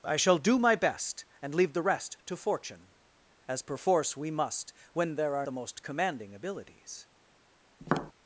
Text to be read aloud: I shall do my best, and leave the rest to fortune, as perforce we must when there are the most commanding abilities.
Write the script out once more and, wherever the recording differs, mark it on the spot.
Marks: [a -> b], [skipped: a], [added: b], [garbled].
I shall do my best, and leave the rest to fortune, as perforce we must when there are the most commanding abilities.